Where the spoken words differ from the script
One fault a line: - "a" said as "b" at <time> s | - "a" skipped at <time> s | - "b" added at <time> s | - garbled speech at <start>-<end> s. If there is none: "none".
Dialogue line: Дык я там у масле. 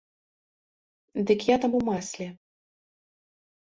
none